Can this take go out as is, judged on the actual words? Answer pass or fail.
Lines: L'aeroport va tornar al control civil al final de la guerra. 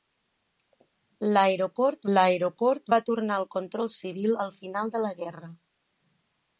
fail